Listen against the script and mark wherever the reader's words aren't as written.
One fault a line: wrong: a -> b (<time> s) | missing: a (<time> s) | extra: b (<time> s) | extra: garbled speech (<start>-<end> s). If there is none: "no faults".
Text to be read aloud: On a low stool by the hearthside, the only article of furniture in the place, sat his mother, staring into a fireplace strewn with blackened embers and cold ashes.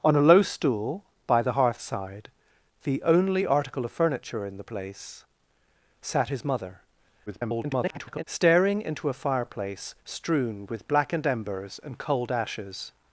extra: garbled speech (7.3-8.2 s)